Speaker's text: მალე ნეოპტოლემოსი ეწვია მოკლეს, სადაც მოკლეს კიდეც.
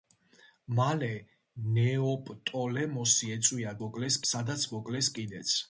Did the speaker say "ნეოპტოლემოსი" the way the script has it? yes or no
yes